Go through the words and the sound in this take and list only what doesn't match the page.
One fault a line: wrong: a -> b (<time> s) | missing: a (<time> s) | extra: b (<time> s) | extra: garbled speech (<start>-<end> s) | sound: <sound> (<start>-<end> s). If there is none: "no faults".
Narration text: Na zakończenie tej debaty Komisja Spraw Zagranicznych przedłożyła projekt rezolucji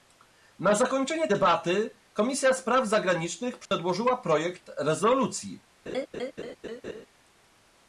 missing: tej (1.3 s)
sound: dropout (3.7-3.7 s)
sound: laugh (5.9-7.1 s)